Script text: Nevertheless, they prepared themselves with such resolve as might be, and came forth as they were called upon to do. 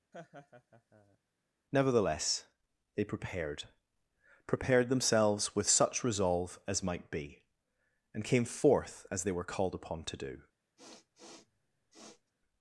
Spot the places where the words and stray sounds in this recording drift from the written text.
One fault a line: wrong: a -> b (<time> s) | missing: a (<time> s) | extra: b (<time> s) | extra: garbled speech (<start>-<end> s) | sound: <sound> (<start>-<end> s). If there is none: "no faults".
sound: laugh (0.1-1.2 s)
extra: prepared (4.5 s)
sound: sniff (10.8-12.3 s)